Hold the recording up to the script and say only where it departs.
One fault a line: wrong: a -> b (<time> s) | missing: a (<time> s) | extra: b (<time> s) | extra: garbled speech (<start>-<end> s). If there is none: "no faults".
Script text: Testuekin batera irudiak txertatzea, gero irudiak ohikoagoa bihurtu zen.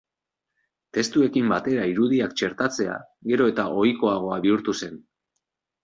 wrong: irudiak -> eta (3.5 s)